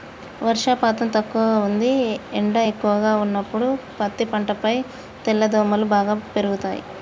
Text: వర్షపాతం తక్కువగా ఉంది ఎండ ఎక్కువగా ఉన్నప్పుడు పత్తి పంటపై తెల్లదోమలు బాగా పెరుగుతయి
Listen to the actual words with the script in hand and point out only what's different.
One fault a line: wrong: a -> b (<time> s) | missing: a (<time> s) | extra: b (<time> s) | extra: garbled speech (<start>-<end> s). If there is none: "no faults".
no faults